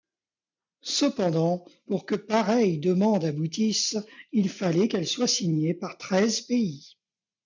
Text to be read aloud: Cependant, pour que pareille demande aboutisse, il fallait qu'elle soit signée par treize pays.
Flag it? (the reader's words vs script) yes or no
no